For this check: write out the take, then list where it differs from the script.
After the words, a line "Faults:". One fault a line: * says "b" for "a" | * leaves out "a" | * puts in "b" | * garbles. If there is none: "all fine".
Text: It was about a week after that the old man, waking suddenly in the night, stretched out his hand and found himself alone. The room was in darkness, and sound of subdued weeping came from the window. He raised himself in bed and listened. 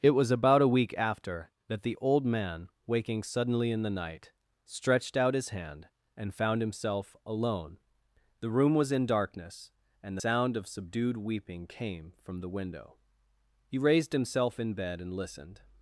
It was about a week after that the old man, waking suddenly in the night, stretched out his hand and found himself alone. The room was in darkness, and sound of subdued weeping came from the window. He raised himself in bed and listened.
Faults:
all fine